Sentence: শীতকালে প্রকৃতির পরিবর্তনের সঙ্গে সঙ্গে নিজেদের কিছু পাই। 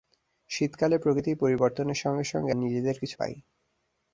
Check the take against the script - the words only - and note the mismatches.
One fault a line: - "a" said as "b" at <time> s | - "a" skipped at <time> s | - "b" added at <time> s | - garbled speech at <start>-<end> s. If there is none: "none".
none